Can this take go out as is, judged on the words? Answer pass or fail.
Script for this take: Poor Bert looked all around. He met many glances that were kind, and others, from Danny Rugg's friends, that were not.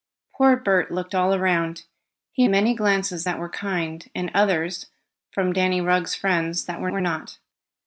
fail